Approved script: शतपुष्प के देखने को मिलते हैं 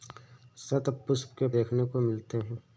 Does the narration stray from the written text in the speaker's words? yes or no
no